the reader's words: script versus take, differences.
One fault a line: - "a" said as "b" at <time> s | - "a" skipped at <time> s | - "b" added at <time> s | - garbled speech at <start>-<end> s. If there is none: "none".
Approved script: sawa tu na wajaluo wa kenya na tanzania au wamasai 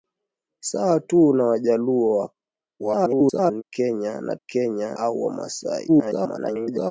- garbled speech at 2.8-3.6 s
- "tanzania" said as "kenya" at 4.5 s
- garbled speech at 5.9-6.9 s